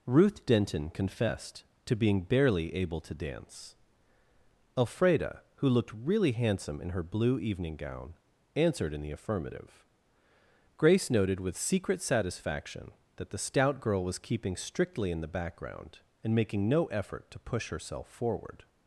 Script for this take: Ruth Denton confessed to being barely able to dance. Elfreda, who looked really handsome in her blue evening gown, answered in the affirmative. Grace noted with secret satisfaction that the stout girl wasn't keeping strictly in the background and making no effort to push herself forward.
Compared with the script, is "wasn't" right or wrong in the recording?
wrong